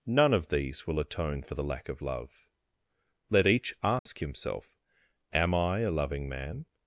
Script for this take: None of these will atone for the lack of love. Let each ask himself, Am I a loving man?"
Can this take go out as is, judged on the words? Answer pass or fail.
pass